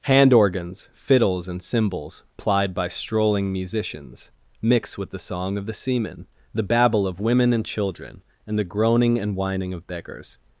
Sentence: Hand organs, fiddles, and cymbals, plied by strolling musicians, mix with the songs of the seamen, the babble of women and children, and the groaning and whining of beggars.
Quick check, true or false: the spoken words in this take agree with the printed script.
false